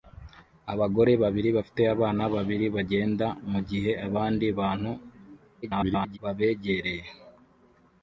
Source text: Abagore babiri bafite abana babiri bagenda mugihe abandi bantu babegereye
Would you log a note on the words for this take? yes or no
yes